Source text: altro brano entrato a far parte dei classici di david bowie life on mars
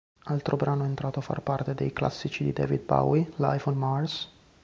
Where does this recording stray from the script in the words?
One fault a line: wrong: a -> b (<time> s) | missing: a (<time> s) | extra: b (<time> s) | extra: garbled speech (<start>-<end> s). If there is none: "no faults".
no faults